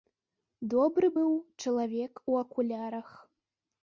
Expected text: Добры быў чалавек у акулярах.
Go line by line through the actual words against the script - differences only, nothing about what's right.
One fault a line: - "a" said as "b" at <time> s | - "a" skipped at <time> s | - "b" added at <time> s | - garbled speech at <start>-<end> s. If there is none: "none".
none